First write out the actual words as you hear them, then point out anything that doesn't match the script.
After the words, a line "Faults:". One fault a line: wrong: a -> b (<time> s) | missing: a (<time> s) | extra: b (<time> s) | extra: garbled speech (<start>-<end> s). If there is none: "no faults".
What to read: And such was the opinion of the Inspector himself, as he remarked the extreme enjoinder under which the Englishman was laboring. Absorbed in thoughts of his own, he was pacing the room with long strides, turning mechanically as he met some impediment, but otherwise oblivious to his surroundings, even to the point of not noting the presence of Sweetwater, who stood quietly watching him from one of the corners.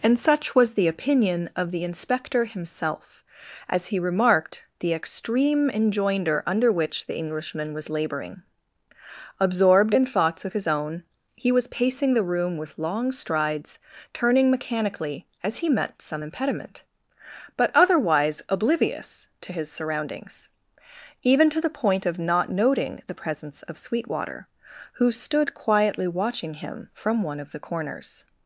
And such was the opinion of the Inspector himself, as he remarked the extreme enjoinder under which the Englishman was laboring. Absorbed in thoughts of his own, he was pacing the room with long strides, turning mechanically as he met some impediment, but otherwise oblivious to his surroundings, even to the point of not noting the presence of Sweetwater, who stood quietly watching him from one of the corners.
Faults:
no faults